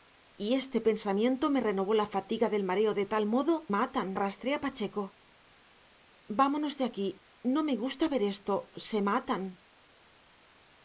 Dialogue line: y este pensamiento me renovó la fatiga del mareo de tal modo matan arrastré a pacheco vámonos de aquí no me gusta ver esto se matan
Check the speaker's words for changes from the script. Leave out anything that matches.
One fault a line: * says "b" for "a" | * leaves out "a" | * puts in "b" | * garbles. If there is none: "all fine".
all fine